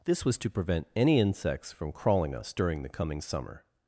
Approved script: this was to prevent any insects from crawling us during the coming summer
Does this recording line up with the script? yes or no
yes